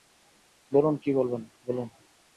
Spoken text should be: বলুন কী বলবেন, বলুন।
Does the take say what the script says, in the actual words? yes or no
yes